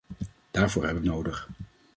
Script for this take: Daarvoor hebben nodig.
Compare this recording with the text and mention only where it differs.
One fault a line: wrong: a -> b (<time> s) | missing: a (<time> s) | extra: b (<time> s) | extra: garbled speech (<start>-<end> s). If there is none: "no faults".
no faults